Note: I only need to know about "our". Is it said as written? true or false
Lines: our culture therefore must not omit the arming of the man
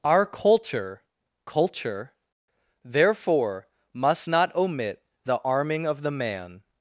true